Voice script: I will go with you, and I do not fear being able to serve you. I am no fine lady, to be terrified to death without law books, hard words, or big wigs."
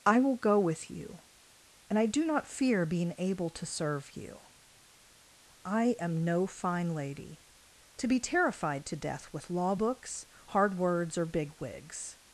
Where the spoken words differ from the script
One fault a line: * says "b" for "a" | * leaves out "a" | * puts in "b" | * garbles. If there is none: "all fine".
* says "with" for "without"